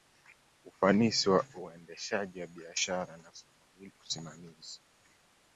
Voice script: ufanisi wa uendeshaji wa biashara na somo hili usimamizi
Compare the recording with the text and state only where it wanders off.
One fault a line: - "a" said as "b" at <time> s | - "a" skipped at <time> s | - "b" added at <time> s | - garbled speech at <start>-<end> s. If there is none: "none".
none